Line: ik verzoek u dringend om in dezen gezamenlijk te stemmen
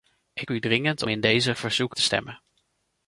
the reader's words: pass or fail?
fail